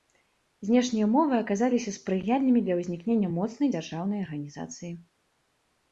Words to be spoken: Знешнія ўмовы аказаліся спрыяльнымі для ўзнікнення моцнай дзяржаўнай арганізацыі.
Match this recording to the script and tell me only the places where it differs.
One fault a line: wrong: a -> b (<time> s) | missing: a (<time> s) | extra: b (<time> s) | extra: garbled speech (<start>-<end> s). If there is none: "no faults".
no faults